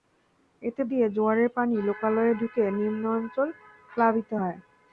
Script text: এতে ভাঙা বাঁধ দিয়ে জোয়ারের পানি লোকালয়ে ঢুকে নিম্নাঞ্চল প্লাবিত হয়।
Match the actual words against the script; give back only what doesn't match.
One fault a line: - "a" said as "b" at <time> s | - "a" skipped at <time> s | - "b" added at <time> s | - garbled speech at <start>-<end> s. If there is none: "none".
- "ভাঙা বাঁধ" skipped at 0.8 s